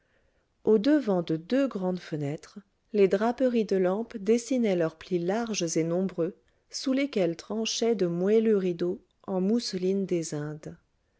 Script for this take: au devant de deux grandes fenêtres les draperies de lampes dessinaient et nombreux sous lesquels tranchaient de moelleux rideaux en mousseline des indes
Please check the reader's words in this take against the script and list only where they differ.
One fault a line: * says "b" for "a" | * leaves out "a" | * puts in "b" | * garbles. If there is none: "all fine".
* puts in "leurs plis larges"